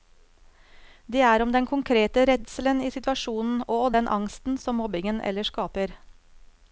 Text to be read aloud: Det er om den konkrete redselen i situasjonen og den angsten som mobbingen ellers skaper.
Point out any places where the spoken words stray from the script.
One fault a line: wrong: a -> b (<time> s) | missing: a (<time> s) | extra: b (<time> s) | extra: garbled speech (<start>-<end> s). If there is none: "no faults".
no faults